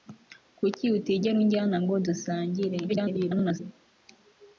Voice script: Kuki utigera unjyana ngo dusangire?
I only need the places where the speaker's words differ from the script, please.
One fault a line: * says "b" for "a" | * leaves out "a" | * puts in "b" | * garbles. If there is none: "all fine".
* garbles